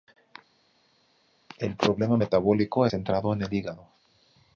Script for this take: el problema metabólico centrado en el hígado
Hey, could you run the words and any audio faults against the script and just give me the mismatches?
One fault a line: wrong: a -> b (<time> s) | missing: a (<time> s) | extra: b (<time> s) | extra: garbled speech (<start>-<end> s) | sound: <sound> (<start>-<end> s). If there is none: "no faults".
no faults